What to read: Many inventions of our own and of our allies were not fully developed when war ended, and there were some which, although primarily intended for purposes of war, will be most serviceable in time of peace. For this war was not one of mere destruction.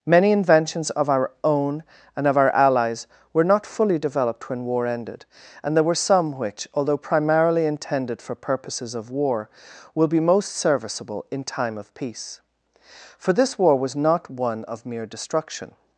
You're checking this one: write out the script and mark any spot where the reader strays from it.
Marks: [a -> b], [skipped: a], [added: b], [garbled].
Many inventions of our own and of our allies were not fully developed when war ended, and there were some which, although primarily intended for purposes of war, will be most serviceable in time of peace. For this war was not one of mere destruction.